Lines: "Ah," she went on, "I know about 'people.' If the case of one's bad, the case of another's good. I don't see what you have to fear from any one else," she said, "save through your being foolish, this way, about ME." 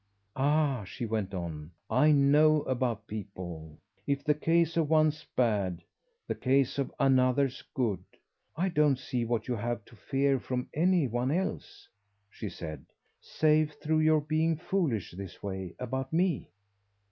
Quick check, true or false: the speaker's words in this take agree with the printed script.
true